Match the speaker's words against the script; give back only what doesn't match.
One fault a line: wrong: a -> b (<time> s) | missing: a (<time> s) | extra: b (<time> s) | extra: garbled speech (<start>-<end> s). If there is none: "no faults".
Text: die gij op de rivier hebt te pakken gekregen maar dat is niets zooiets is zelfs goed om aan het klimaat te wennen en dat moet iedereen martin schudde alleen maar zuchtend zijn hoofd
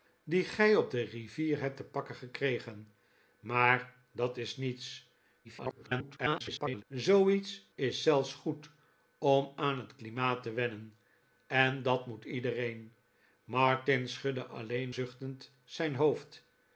extra: garbled speech (5.4-6.8 s)
missing: maar (14.9 s)